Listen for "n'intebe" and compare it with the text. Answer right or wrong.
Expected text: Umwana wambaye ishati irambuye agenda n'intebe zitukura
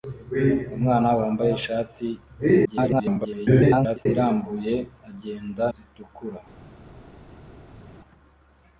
wrong